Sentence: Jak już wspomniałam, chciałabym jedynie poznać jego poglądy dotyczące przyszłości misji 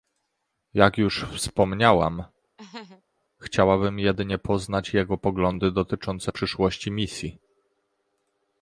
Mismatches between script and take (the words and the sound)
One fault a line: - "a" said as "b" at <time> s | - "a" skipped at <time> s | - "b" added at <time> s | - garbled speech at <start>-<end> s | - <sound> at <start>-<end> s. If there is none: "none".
- laugh at 2.6-3.0 s